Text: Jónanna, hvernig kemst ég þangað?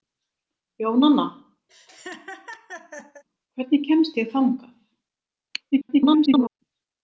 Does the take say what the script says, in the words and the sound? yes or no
no